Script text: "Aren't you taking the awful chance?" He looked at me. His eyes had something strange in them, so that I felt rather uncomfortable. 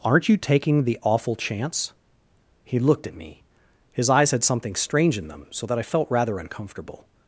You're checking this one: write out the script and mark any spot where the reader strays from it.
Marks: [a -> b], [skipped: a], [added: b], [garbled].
"Aren't you taking the awful chance?" He looked at me. His eyes had something strange in them, so that I felt rather uncomfortable.